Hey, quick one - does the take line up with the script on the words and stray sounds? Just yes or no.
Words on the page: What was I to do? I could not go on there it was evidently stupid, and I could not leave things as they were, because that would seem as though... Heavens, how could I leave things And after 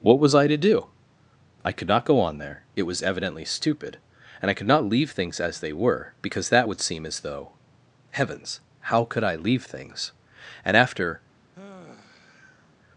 no